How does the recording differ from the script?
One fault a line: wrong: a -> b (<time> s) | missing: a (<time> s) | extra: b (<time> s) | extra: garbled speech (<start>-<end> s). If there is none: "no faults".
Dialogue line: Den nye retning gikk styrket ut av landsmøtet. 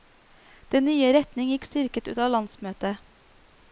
no faults